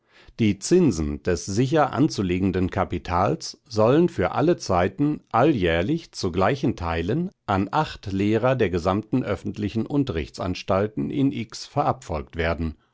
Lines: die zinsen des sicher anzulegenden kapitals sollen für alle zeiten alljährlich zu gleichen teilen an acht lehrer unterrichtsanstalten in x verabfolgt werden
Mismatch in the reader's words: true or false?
true